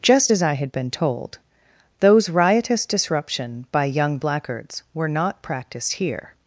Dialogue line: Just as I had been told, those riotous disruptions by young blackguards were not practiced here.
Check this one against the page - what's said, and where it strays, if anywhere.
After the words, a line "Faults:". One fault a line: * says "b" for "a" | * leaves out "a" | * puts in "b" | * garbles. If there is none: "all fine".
Just as I had been told, those riotous disruption by young blackguards were not practiced here.
Faults:
* says "disruption" for "disruptions"